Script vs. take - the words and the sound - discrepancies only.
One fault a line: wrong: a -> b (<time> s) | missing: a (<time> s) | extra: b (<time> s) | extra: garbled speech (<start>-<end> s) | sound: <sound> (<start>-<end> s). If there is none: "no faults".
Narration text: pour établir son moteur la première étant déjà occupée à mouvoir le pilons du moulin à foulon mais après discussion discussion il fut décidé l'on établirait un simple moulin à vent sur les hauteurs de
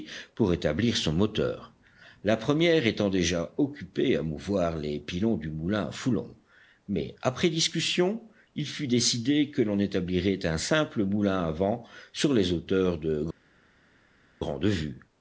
wrong: le -> les (4.8 s)
missing: discussion (8.3 s)
extra: que (9.5 s)